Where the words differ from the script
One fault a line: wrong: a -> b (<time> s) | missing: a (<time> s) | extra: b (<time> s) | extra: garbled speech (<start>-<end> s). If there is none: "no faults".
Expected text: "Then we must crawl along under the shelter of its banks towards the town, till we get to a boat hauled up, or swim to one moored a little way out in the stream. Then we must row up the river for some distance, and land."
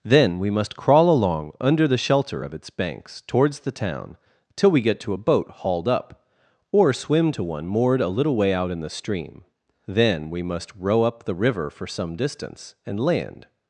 no faults